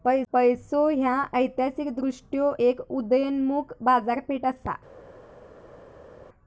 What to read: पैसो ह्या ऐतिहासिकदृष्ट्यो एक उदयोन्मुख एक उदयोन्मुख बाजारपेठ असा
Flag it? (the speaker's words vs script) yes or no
yes